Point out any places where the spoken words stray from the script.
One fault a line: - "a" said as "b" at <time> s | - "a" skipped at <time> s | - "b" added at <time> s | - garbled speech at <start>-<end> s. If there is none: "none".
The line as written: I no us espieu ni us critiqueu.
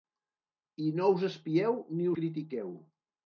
- "us" skipped at 2.1 s